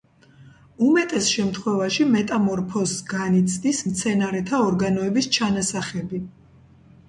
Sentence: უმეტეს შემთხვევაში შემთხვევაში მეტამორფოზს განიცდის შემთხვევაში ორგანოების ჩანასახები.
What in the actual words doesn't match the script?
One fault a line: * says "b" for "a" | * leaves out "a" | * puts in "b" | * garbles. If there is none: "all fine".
* leaves out "შემთხვევაში"
* says "მცენარეთა" for "შემთხვევაში"